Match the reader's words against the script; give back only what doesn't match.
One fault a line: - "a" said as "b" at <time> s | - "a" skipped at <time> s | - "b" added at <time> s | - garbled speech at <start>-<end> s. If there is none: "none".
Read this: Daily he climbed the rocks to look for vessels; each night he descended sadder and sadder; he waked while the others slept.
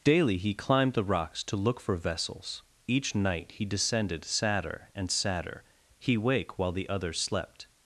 - "waked" said as "wake" at 6.2 s